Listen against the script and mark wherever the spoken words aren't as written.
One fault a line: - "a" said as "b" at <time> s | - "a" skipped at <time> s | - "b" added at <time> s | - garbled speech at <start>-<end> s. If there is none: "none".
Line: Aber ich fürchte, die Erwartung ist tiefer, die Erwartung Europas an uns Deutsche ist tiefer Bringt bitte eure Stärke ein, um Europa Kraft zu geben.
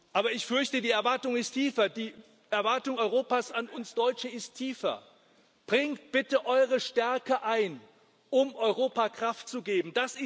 none